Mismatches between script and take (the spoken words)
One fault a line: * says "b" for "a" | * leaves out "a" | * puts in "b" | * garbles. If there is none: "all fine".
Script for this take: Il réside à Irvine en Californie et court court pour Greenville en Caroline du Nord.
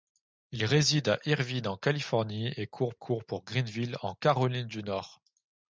all fine